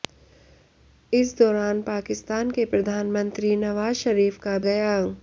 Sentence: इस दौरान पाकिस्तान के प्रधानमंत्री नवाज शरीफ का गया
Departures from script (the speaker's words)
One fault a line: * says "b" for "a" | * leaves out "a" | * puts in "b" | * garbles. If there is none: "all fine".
all fine